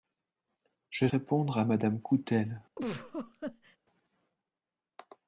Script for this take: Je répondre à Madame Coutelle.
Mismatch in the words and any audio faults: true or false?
true